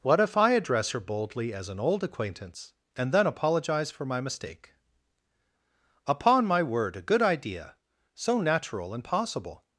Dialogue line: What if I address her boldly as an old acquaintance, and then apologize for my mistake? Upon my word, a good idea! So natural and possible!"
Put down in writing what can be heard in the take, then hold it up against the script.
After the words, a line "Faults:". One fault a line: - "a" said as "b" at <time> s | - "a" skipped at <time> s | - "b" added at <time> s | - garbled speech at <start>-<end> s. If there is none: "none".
What if I address her boldly as an old acquaintance, and then apologize for my mistake? Upon my word, a good idea! So natural and possible!"
Faults:
none